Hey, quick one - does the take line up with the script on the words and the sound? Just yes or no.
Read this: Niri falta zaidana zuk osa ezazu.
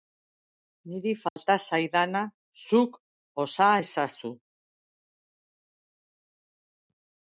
no